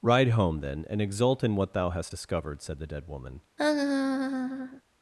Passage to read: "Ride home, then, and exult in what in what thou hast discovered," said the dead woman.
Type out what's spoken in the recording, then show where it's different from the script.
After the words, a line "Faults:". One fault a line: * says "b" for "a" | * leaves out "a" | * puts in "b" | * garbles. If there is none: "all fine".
"Ride home, then, and exult in what thou hast discovered," said the dead woman.
Faults:
* leaves out "in what"